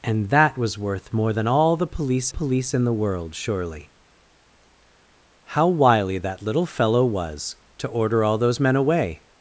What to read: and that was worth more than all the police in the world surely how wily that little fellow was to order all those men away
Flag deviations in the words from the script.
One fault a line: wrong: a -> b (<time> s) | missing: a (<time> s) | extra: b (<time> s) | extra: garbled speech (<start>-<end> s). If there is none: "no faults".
extra: police (2.3 s)